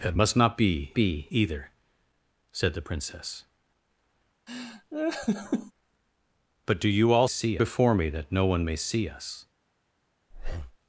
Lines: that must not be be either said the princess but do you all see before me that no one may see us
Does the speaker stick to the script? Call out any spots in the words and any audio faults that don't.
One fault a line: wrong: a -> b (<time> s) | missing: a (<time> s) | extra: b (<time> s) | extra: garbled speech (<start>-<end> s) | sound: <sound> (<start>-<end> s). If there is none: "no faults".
sound: laugh (4.5-5.7 s)
sound: breath (10.3-10.8 s)